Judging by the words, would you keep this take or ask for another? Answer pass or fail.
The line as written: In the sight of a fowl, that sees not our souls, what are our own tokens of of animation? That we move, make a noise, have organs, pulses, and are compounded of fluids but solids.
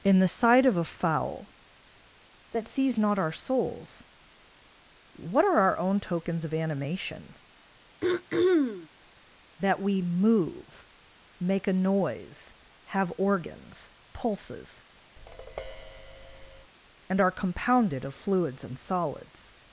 fail